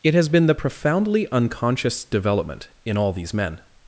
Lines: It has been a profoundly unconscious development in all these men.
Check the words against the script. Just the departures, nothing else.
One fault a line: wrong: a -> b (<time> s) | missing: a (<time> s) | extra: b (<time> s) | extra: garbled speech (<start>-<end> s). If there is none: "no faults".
wrong: a -> the (0.5 s)